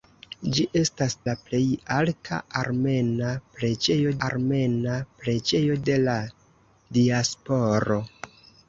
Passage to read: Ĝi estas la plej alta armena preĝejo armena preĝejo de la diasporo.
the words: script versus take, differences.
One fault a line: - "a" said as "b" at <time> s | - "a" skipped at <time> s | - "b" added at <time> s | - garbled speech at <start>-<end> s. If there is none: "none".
none